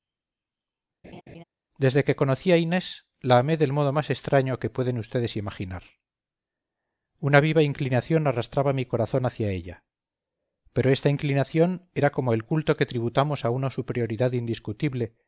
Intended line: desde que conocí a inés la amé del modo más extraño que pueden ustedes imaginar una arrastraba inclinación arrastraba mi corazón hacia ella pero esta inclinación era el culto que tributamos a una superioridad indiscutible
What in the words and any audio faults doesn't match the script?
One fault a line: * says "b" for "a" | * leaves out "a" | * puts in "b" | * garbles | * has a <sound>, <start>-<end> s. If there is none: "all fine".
* has a laugh, 1.0-1.4 s
* says "viva" for "arrastraba"
* puts in "como"